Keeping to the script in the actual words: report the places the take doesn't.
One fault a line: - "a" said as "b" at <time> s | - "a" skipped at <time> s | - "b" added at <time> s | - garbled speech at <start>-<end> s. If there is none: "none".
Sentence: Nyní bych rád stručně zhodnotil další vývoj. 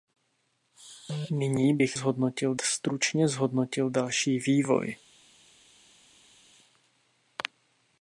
- "rád" said as "zhodnotil" at 1.9 s